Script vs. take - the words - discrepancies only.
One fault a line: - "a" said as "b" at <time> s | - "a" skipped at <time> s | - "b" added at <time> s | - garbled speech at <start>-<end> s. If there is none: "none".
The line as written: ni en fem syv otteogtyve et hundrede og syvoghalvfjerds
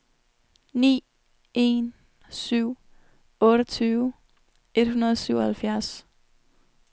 - "fem" skipped at 1.9 s